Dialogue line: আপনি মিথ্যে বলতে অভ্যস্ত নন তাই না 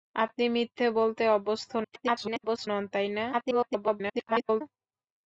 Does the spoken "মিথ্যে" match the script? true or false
true